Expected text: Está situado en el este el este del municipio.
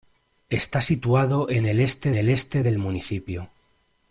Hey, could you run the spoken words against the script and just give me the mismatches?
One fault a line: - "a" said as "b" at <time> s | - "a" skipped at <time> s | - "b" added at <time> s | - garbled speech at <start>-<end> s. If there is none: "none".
none